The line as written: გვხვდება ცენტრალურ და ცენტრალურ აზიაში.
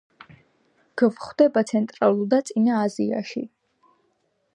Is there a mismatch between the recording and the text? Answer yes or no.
yes